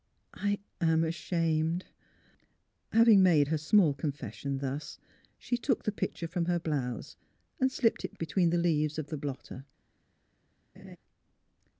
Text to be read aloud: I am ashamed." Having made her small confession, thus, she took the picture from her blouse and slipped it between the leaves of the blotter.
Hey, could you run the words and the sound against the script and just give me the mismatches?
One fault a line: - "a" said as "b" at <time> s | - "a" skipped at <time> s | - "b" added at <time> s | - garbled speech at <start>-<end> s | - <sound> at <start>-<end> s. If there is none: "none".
- laugh at 10.7-11.0 s